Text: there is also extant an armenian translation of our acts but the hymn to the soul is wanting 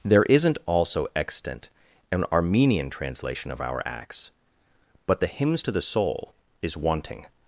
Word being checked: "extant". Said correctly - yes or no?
yes